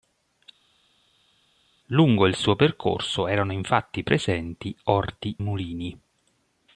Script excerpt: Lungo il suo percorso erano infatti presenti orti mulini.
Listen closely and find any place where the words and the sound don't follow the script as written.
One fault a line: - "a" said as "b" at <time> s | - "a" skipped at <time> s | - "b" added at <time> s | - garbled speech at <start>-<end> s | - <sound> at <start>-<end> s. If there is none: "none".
none